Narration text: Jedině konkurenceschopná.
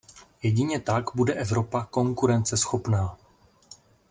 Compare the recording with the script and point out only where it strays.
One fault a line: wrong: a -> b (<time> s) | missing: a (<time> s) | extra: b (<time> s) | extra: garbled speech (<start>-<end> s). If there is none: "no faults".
extra: tak bude Evropa (0.8 s)